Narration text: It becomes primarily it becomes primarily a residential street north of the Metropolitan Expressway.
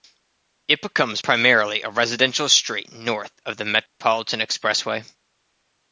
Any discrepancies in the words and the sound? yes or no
yes